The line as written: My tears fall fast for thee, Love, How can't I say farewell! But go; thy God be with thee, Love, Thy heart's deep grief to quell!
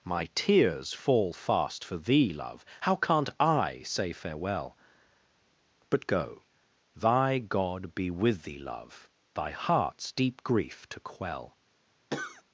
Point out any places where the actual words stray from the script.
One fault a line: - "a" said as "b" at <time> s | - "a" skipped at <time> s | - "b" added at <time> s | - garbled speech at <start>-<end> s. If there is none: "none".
none